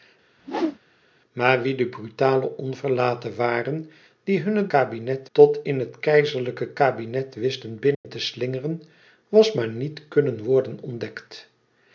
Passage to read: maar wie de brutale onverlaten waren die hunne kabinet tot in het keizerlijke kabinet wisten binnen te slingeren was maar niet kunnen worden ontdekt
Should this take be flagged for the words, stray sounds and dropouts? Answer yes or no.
yes